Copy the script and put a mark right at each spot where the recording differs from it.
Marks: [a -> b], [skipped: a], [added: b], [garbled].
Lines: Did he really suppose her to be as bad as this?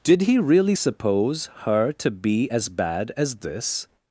Did he really suppose her to be as bad as this?